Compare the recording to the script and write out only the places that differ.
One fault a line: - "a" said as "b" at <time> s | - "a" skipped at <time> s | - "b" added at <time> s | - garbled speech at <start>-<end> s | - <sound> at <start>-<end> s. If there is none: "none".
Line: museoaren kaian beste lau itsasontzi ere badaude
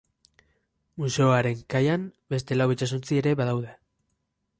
none